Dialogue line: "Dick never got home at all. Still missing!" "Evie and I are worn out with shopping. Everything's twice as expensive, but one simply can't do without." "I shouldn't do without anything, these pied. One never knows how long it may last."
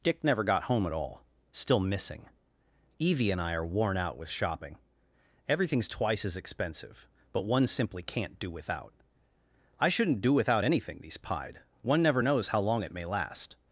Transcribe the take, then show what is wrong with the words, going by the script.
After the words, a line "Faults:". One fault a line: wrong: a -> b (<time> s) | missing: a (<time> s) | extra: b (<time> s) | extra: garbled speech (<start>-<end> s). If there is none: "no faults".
"Dick never got home at all. Still missing!" "Evie and I are worn out with shopping. Everything's twice as expensive, but one simply can't do without." "I shouldn't do without anything, these pied. One never knows how long it may last."
Faults:
no faults